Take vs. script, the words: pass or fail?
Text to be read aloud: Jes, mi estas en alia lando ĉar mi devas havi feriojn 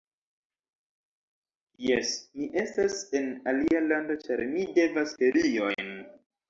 fail